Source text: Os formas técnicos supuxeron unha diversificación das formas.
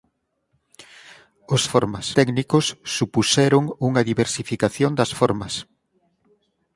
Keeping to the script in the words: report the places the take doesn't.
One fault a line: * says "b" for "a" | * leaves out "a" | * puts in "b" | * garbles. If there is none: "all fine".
all fine